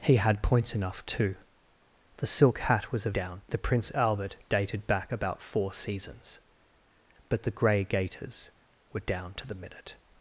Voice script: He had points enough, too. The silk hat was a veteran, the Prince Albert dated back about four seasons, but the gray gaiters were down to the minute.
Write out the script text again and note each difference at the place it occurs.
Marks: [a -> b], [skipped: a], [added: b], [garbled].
He had points enough, too. The silk hat was a [veteran, -> down] the Prince Albert dated back about four seasons, but the gray gaiters were down to the minute.